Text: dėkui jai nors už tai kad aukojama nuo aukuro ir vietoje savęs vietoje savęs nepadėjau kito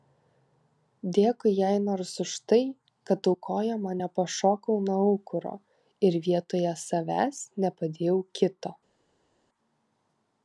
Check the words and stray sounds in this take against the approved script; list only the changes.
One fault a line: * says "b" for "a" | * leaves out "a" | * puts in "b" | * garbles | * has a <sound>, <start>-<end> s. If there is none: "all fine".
* puts in "nepašokau"
* leaves out "vietoje savęs"